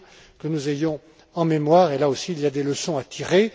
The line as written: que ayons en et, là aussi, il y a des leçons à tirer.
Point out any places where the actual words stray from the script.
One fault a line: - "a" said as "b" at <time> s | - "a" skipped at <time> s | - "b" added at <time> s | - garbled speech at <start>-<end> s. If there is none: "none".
- "nous" added at 0.5 s
- "mémoire" added at 1.4 s